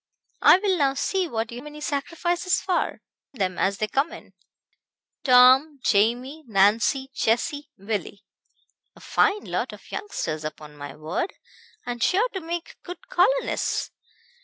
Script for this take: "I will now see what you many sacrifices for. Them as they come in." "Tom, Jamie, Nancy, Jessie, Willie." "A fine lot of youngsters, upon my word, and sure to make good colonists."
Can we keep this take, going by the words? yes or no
yes